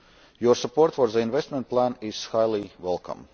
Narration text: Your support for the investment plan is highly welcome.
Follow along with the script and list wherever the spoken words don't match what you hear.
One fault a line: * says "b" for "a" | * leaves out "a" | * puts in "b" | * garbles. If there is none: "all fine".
all fine